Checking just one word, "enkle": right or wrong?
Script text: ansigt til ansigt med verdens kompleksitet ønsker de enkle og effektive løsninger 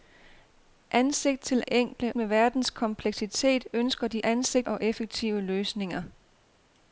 wrong